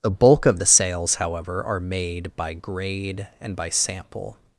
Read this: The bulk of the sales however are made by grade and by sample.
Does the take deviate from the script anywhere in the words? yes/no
no